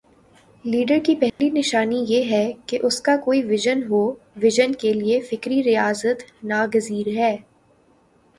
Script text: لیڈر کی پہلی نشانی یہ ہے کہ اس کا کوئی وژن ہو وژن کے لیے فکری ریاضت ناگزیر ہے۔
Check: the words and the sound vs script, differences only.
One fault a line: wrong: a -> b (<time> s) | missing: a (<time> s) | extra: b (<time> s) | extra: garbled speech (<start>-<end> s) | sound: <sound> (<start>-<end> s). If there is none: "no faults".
sound: dropout (1.3-1.4 s)